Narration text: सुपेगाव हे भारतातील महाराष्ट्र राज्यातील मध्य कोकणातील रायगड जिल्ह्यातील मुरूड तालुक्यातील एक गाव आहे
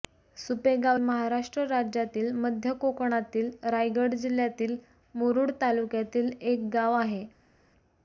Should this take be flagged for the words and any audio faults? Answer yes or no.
yes